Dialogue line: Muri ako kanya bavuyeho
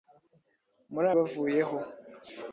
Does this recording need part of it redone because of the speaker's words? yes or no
yes